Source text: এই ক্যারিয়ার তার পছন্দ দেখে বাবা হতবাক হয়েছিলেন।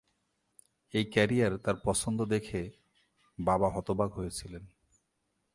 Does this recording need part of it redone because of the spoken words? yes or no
no